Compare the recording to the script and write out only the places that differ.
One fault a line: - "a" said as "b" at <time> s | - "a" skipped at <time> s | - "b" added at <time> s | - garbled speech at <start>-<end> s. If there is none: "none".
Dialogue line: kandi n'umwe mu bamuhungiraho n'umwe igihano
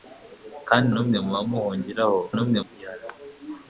none